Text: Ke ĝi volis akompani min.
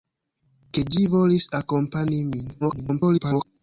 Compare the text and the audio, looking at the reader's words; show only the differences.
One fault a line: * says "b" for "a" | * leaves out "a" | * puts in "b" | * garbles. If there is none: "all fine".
* garbles